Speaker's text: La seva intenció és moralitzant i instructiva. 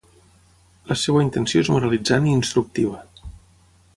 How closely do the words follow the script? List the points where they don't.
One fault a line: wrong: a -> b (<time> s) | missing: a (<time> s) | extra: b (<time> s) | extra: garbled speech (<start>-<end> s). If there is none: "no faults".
no faults